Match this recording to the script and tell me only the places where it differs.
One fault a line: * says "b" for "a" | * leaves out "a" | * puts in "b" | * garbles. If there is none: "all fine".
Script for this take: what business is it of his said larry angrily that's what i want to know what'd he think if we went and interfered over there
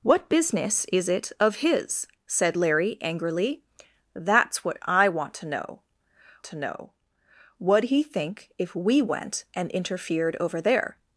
* puts in "to know"